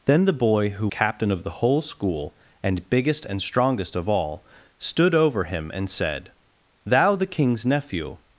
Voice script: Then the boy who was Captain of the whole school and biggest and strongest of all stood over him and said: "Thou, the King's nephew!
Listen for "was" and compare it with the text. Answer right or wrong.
wrong